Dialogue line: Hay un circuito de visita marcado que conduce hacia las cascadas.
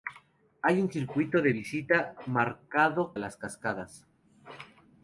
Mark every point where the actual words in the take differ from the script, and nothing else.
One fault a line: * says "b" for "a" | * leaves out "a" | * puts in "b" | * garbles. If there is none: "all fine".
* leaves out "que conduce hacia"